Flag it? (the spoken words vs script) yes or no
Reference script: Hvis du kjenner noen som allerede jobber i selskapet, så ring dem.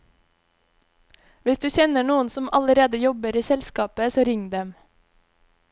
no